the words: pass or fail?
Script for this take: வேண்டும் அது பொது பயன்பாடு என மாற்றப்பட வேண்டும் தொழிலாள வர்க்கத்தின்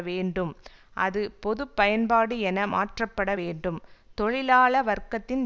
pass